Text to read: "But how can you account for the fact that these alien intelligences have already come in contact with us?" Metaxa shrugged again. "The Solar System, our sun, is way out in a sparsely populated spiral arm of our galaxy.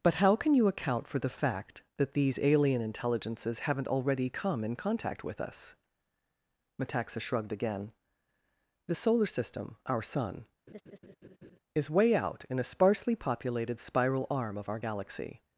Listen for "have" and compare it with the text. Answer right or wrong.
wrong